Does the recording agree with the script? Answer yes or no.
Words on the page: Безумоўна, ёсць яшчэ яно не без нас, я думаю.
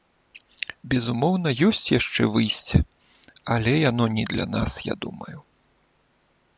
no